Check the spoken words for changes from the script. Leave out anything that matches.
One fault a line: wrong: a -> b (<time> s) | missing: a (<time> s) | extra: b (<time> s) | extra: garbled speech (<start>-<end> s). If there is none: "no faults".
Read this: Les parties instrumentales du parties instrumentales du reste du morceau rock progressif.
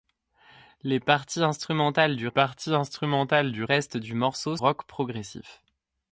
no faults